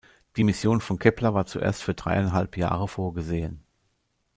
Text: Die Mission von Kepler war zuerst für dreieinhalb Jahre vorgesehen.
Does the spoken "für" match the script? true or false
true